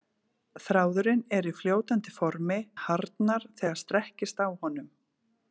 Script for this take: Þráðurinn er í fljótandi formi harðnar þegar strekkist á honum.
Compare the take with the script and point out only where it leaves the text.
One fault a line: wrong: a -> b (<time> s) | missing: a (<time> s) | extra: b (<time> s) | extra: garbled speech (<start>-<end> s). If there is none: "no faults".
no faults